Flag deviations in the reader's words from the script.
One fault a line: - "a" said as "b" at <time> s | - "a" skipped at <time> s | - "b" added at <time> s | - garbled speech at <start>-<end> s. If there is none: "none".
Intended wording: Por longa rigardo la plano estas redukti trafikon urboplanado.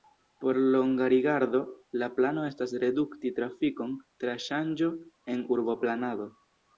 - "tra ŝanĝo en" added at 4.2 s